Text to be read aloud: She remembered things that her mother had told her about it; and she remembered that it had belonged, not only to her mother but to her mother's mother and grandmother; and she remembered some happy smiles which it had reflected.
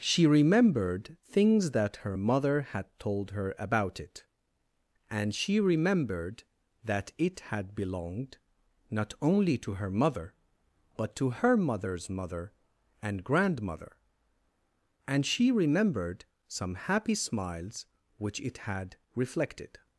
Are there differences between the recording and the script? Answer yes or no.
no